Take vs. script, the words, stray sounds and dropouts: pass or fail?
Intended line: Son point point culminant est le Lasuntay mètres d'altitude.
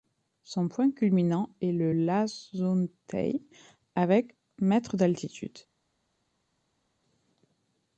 fail